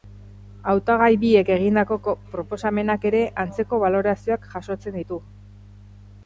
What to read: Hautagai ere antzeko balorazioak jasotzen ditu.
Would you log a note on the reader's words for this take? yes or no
yes